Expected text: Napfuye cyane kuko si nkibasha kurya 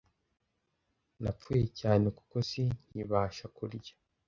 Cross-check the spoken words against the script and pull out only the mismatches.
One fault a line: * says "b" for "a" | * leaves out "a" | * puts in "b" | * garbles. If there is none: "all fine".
all fine